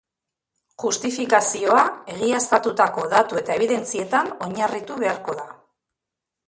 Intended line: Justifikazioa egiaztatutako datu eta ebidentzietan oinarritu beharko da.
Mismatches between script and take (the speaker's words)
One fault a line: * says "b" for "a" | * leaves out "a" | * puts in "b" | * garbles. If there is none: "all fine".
all fine